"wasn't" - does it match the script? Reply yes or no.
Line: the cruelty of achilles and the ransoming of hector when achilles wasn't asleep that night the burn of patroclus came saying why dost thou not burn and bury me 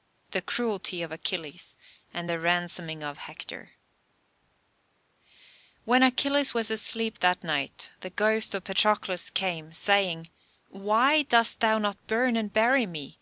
no